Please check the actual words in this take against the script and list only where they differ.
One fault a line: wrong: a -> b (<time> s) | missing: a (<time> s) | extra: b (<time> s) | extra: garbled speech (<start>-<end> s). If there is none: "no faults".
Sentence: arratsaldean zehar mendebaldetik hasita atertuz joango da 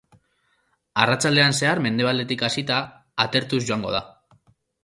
no faults